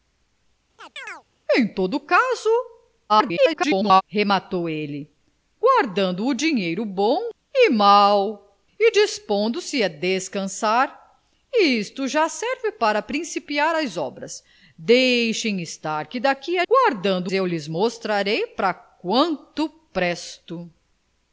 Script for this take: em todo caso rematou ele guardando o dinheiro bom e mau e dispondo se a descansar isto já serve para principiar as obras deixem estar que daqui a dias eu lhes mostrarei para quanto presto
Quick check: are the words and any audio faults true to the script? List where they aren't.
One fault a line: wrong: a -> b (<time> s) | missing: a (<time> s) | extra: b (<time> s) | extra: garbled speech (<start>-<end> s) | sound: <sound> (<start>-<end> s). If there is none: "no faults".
sound: chirp (0.8-1.2 s)
extra: garbled speech (3.1-4.0 s)
wrong: dias -> guardando (16.7 s)